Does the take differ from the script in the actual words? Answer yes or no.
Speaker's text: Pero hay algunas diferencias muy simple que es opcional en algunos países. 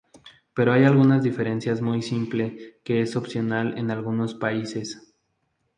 no